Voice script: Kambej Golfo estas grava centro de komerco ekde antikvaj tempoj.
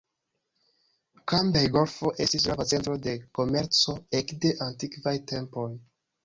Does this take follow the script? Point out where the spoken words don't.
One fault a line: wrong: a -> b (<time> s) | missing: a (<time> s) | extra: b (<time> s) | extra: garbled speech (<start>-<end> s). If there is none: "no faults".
wrong: estas -> estis (2.2 s)